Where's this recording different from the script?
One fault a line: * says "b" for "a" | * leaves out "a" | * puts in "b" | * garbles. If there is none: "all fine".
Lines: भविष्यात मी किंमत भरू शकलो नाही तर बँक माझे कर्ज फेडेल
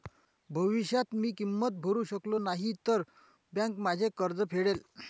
all fine